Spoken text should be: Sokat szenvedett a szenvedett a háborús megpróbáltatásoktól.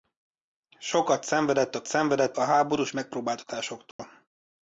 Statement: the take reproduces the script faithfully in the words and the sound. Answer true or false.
false